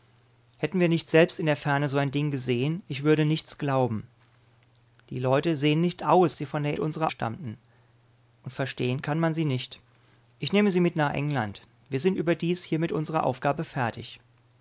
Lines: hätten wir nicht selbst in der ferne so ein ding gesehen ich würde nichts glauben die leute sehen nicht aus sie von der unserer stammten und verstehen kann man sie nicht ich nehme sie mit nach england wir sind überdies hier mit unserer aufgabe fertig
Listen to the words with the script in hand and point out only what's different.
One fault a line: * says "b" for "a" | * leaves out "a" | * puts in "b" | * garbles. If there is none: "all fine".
all fine